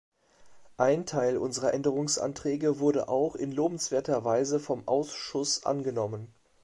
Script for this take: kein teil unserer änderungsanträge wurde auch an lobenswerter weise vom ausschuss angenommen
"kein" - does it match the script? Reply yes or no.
no